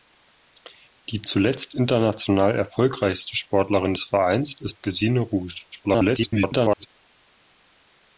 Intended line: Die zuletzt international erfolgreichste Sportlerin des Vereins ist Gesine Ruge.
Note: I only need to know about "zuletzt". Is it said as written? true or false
true